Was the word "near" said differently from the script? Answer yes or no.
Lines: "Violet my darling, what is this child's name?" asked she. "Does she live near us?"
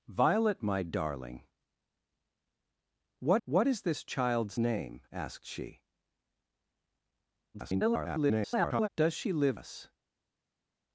yes